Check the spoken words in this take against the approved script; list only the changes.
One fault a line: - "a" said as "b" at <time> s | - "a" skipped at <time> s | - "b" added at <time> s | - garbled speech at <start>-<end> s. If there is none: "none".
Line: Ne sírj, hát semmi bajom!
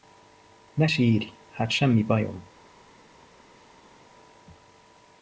none